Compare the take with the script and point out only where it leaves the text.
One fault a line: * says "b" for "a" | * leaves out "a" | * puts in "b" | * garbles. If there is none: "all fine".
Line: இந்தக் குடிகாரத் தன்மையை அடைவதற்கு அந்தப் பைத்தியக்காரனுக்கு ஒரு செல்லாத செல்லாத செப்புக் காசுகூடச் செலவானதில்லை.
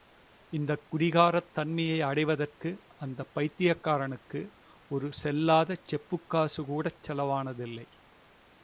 * leaves out "செல்லாத"